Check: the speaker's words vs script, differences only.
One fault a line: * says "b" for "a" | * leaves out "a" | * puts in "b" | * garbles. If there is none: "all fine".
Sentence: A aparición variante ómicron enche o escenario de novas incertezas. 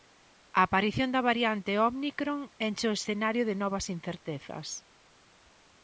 * puts in "da"